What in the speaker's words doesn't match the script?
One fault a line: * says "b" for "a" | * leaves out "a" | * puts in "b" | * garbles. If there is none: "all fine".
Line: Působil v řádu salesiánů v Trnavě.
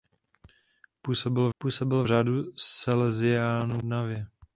* puts in "působil"
* leaves out "v"